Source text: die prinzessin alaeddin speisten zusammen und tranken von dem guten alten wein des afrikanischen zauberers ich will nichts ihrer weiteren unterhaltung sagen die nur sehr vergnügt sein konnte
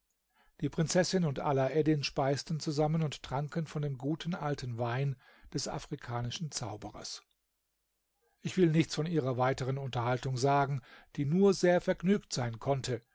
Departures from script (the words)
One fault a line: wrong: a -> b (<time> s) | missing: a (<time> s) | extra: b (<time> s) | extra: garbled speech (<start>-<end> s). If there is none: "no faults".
extra: und (1.2 s)
extra: von (8.9 s)